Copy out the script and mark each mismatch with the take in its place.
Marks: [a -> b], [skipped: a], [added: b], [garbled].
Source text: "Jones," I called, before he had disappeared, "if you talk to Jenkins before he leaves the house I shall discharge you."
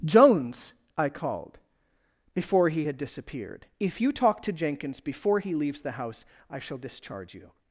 "Jones," I called, before he had disappeared, "if you talk to Jenkins before he leaves the house I shall discharge you."